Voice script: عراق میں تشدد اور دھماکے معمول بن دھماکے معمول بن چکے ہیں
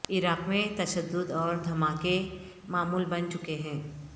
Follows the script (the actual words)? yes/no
no